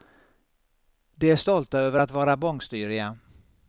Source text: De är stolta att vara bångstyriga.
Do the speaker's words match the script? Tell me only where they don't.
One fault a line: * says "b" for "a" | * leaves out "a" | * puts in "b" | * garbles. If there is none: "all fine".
* puts in "över"